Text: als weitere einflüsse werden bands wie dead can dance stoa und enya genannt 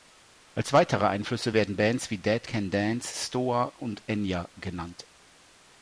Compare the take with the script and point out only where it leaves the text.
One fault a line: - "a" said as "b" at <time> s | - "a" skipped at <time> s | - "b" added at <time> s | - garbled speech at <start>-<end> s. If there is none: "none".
none